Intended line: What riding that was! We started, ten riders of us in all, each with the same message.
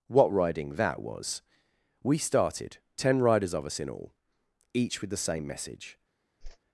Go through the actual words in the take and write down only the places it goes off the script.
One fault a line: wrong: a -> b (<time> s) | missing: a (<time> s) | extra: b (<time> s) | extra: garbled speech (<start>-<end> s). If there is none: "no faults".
no faults